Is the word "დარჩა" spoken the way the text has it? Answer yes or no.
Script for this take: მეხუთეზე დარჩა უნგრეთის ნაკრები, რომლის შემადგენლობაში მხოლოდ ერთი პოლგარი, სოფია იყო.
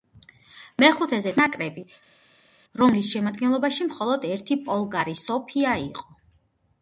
no